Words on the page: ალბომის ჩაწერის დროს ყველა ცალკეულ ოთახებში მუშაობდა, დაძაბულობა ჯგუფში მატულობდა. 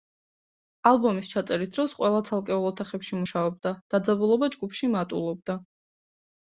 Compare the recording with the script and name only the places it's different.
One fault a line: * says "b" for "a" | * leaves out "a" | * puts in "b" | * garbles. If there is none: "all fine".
all fine